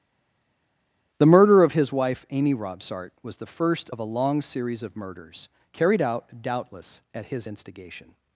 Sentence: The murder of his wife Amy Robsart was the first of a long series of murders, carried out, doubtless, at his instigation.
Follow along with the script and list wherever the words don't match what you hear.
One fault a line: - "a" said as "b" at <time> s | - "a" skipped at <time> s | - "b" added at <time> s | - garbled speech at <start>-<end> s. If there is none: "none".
none